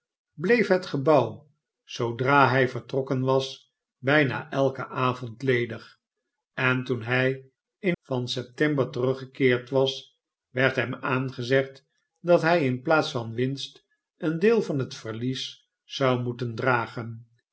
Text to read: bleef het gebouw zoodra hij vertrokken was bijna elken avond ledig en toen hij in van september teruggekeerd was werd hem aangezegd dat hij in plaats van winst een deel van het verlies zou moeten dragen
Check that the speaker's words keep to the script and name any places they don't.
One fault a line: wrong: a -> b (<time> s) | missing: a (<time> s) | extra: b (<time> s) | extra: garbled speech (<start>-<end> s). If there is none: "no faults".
no faults